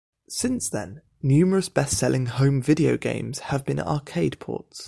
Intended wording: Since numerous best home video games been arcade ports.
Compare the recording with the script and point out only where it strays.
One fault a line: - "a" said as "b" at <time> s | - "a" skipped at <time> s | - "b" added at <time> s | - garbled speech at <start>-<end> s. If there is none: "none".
- "then" added at 0.7 s
- "selling" added at 2.0 s
- "have" added at 3.4 s